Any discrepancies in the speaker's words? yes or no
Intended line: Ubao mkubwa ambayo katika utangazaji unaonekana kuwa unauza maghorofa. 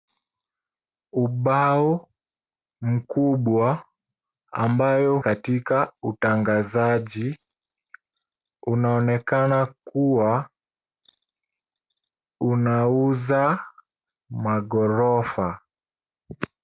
no